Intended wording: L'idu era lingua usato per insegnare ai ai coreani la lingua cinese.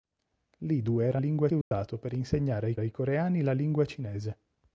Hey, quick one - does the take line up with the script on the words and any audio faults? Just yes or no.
no